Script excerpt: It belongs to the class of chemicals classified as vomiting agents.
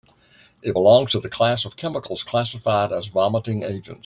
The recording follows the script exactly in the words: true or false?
true